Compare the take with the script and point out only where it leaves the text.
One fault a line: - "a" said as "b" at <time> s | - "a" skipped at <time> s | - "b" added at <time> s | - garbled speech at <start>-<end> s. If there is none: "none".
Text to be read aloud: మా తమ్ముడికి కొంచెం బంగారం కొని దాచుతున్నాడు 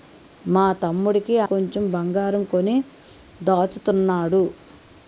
none